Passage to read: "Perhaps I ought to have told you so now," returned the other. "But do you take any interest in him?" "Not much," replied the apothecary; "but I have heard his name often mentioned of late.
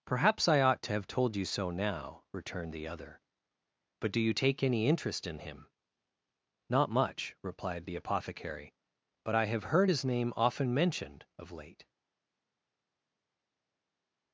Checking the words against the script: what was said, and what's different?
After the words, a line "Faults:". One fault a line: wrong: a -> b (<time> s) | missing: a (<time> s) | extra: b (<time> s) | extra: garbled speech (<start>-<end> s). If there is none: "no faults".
"Perhaps I ought to have told you so now," returned the other. "But do you take any interest in him?" "Not much," replied the apothecary; "but I have heard his name often mentioned of late.
Faults:
no faults